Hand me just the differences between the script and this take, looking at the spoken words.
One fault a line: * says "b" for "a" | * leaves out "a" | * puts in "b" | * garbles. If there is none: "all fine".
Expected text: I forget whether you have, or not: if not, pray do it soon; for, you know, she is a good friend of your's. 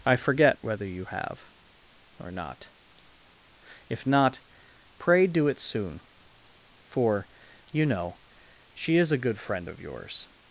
all fine